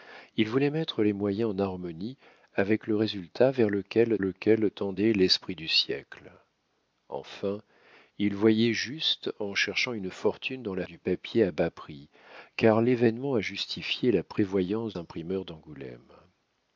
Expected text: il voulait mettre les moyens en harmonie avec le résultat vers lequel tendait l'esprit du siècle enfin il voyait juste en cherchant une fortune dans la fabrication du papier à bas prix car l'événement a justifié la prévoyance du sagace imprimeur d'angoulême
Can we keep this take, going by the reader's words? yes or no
no